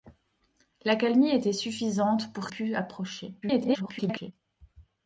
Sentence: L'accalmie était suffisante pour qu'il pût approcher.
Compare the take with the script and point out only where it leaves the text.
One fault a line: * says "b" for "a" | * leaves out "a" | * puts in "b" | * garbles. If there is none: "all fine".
* leaves out "qu'il"
* garbles